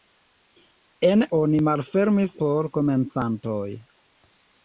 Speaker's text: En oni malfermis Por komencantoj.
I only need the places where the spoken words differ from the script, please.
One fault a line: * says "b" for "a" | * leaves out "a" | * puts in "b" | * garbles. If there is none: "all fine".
all fine